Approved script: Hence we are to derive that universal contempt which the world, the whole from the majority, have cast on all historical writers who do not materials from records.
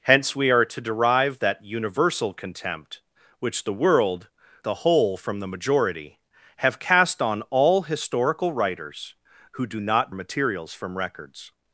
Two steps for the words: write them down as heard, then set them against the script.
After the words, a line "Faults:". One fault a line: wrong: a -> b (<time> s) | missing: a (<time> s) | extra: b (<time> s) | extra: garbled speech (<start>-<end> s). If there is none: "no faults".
Hence we are to derive that universal contempt which the world, the whole from the majority, have cast on all historical writers who do not materials from records.
Faults:
no faults